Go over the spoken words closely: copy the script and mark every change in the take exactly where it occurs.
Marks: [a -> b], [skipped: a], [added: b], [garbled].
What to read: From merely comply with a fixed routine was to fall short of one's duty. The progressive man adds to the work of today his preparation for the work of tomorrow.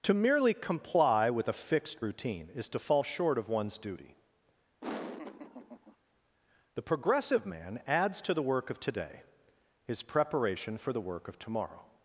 [From -> To] merely comply with a fixed routine [was -> is] to fall short of one's duty. The progressive man adds to the work of today his preparation for the work of tomorrow.